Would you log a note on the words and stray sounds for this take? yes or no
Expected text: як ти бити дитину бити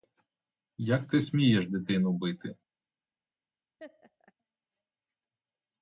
yes